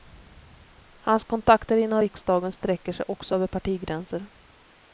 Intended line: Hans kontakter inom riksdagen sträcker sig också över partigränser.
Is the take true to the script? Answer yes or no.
yes